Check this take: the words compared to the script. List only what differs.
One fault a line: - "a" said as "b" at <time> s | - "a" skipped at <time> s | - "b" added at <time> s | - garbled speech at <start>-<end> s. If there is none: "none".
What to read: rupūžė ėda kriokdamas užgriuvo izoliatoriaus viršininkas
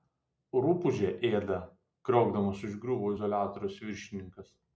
none